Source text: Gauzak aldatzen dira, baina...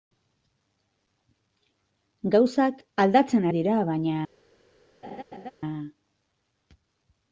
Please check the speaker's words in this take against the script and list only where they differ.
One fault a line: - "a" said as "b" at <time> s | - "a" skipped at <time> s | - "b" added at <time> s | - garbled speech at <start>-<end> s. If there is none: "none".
none